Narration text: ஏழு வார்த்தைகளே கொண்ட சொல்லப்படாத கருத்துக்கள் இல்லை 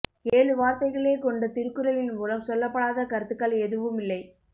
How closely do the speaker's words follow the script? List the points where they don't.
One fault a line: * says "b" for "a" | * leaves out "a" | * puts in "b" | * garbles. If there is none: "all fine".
* puts in "திருக்குறளின் மூலம்"
* puts in "எதுவும்"